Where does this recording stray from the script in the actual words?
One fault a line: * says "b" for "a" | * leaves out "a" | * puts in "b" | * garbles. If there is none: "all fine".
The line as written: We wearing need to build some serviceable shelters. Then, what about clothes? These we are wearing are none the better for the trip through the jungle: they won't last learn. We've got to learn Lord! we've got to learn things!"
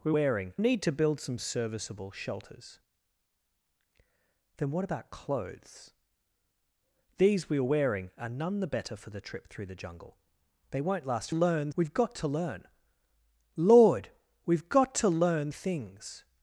all fine